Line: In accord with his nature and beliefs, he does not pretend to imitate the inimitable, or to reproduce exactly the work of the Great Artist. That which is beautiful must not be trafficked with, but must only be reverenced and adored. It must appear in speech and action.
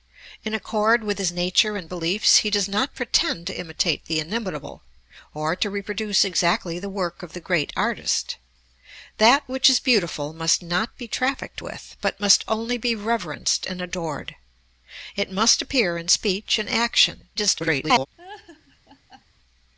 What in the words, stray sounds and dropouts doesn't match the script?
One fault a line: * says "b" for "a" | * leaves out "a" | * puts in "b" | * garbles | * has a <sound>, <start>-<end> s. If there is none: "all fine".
* garbles
* has a laugh, 18.2-19.2 s